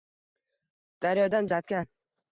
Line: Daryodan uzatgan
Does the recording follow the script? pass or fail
pass